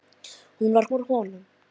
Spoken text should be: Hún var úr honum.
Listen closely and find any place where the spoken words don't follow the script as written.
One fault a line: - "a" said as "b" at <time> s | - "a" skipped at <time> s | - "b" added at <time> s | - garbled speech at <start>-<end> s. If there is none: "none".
none